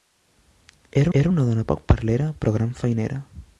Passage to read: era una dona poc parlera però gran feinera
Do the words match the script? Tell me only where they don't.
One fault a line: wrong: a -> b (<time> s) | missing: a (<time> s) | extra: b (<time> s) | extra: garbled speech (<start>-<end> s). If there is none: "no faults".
extra: era (1.2 s)